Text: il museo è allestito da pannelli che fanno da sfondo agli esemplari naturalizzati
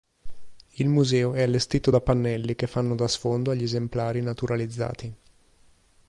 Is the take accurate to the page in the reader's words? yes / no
yes